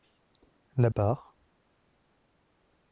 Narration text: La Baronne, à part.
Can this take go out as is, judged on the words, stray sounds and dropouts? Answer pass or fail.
fail